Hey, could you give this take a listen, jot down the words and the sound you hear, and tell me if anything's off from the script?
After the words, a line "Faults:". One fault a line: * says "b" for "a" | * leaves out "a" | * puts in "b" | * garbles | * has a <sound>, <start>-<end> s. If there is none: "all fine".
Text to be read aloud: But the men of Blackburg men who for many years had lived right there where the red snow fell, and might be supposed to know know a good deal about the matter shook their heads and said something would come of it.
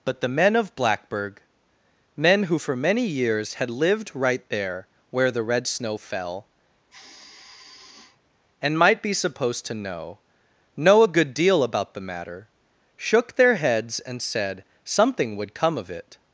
But the men of Blackburg men who for many years had lived right there where the red snow fell, and might be supposed to know know a good deal about the matter shook their heads and said something would come of it.
Faults:
* has a sigh, 6.9-8.2 s